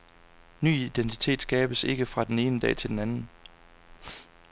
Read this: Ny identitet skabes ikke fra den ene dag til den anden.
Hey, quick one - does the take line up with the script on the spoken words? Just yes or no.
yes